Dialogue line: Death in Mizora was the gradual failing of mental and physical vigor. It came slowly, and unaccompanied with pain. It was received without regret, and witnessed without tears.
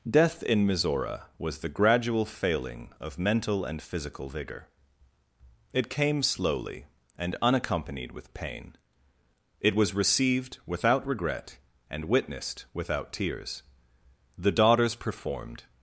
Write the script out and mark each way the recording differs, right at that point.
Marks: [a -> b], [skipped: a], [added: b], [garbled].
Death in Mizora was the gradual failing of mental and physical vigor. It came slowly, and unaccompanied with pain. It was received without regret, and witnessed without tears. [added: The daughters performed]